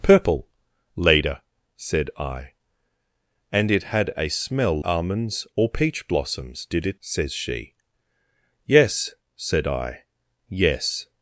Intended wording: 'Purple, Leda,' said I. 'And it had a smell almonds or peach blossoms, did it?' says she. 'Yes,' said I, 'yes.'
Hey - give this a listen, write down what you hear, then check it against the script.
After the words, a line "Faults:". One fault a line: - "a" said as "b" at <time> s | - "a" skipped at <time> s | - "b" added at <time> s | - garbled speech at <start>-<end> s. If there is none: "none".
'Purple, Leda,' said I. 'And it had a smell almonds or peach blossoms, did it?' says she. 'Yes,' said I, 'yes.'
Faults:
none